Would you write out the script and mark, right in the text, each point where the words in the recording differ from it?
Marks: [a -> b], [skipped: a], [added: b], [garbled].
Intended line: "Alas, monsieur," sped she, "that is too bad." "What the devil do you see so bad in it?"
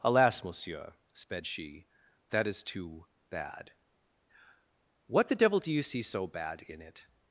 "Alas, monsieur," sped she, "that is too bad." "What the devil do you see so bad in it?"